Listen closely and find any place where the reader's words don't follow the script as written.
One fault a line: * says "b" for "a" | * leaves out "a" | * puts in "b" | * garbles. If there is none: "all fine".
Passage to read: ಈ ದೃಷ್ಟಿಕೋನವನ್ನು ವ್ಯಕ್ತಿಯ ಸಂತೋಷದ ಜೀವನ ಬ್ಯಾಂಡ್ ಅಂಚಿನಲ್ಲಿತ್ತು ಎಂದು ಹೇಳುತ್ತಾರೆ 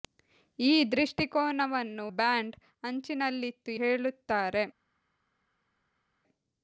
* leaves out "ವ್ಯಕ್ತಿಯ ಸಂತೋಷದ ಜೀವನ"
* leaves out "ಎಂದು"